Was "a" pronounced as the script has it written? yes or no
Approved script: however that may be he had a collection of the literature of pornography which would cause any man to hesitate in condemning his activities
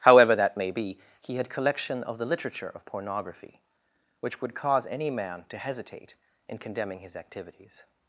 no